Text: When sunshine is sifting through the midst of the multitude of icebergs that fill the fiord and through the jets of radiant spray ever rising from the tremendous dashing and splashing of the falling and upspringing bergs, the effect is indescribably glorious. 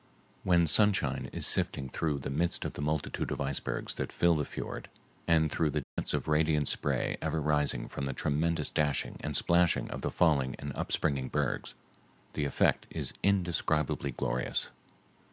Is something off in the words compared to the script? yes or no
no